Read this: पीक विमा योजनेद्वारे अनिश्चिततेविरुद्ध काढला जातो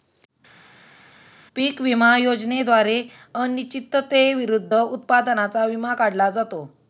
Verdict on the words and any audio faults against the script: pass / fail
fail